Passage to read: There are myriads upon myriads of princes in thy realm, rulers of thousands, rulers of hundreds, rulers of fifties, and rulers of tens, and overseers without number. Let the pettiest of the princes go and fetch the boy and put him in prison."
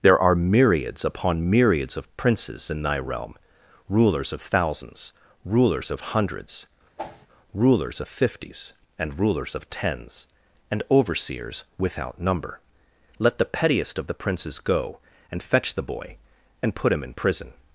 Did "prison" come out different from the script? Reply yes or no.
no